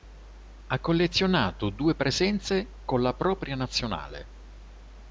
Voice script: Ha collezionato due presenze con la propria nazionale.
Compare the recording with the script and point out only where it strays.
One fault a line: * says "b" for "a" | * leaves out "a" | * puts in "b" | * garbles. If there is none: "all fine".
all fine